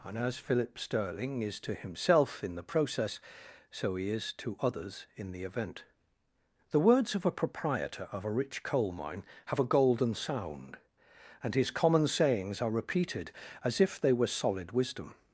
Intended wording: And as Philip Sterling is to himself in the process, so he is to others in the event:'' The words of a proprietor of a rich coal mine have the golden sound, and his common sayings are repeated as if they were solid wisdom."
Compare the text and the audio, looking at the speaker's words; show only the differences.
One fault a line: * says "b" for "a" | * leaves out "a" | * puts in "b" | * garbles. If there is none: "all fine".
* says "a" for "the"